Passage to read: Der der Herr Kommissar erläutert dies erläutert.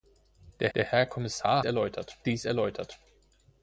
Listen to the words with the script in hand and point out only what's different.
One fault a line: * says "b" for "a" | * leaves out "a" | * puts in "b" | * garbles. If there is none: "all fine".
all fine